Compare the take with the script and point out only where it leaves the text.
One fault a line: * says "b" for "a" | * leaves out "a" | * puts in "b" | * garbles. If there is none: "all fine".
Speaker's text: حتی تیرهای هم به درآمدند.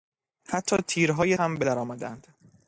all fine